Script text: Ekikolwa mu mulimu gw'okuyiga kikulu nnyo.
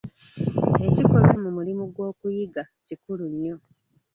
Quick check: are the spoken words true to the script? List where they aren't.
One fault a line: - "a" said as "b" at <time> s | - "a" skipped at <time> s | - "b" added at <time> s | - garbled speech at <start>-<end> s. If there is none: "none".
none